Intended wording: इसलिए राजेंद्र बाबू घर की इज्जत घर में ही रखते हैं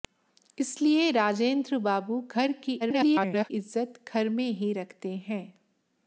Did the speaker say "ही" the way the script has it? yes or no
yes